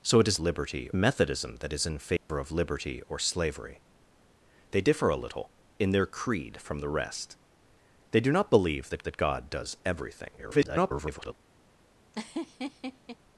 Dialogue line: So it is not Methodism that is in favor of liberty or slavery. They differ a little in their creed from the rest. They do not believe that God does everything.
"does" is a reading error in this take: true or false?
false